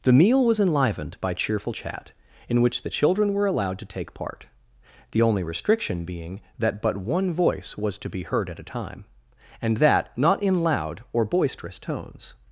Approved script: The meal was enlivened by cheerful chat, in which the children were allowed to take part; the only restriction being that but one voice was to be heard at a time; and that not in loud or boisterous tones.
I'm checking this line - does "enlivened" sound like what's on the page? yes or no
yes